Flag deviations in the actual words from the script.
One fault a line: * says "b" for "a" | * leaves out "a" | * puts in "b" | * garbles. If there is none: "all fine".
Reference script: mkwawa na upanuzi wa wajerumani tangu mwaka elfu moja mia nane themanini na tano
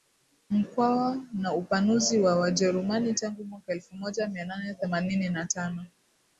all fine